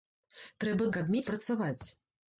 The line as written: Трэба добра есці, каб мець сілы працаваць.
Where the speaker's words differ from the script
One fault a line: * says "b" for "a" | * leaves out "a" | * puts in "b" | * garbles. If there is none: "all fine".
* leaves out "добра есці"
* leaves out "сілы"